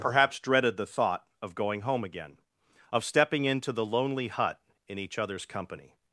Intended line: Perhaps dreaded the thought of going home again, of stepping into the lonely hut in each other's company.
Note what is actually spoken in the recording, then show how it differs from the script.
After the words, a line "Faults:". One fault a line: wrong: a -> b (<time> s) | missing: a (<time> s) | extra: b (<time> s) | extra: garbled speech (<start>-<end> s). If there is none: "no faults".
Perhaps dreaded the thought of going home again, of stepping into the lonely hut in each other's company.
Faults:
no faults